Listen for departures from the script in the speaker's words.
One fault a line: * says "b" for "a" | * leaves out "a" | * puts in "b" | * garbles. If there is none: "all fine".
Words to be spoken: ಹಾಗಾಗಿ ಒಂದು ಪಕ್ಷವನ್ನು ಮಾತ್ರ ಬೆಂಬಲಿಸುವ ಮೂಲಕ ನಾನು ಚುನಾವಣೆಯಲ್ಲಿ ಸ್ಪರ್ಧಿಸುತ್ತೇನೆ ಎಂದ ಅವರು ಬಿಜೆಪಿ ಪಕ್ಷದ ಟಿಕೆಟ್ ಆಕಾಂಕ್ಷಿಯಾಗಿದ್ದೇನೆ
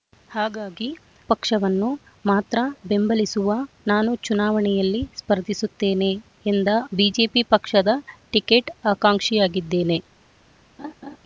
* leaves out "ಒಂದು"
* leaves out "ಮೂಲಕ"
* leaves out "ಅವರು"